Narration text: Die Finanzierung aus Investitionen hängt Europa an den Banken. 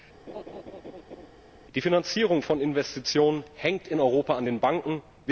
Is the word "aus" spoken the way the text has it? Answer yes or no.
no